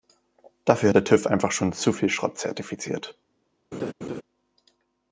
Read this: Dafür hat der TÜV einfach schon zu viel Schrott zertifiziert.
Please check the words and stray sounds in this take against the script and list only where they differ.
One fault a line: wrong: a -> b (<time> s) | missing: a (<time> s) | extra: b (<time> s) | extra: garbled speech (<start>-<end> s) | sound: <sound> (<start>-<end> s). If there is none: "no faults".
sound: laugh (3.7-4.2 s)